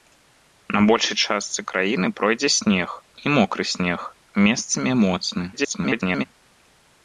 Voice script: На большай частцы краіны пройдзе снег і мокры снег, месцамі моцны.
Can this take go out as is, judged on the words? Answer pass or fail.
fail